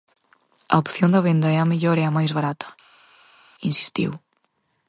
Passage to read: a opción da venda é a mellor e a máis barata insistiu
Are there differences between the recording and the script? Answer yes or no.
no